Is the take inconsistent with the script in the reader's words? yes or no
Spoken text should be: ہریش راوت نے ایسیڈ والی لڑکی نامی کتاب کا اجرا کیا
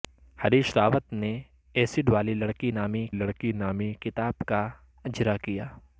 yes